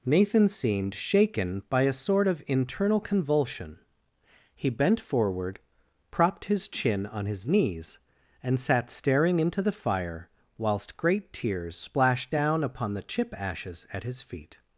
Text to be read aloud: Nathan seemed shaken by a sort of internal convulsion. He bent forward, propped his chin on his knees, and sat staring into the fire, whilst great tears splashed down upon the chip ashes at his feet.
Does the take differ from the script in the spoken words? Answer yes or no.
no